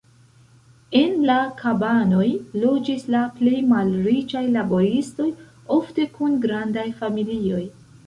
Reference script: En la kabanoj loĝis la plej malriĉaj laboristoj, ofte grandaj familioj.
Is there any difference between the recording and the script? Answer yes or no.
yes